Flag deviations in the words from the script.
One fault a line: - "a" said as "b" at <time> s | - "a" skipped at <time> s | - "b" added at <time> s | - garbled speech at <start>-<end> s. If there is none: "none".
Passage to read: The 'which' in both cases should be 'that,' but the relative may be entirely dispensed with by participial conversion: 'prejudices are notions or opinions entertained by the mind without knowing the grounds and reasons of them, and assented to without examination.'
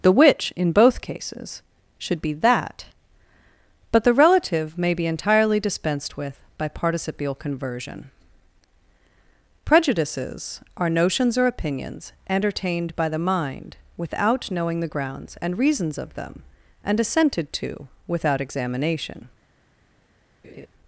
none